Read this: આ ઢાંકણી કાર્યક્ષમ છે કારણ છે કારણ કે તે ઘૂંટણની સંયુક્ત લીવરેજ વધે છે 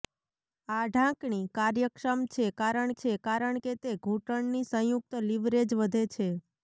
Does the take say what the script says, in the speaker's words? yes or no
yes